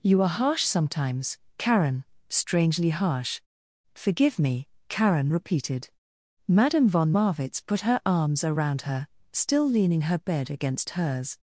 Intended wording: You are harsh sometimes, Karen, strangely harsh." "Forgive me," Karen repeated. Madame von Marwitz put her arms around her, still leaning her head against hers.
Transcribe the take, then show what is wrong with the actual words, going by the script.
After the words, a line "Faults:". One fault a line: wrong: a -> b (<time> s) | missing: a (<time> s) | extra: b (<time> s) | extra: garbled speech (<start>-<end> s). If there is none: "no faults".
You are harsh sometimes, Karen, strangely harsh." "Forgive me," Karen repeated. Madame von Marwitz put her arms around her, still leaning her bed against hers.
Faults:
wrong: head -> bed (10.2 s)